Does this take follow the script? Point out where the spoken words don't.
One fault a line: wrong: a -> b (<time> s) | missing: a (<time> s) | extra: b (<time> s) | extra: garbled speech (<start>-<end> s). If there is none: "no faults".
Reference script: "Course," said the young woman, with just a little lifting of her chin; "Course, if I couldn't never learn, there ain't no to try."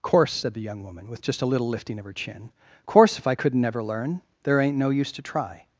extra: use (4.9 s)